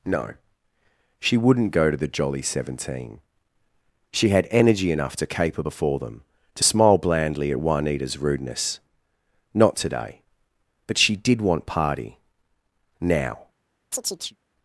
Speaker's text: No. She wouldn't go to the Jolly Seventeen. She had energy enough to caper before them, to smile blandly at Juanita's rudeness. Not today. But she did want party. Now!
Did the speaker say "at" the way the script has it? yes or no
yes